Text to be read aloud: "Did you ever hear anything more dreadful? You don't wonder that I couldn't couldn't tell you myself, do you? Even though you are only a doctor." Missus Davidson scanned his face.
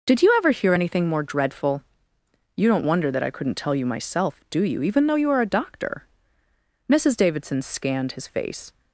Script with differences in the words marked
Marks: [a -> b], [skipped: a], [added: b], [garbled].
"Did you ever hear anything more dreadful? You don't wonder that I couldn't [skipped: couldn't] tell you myself, do you? Even though you are [skipped: only] a doctor." Missus Davidson scanned his face.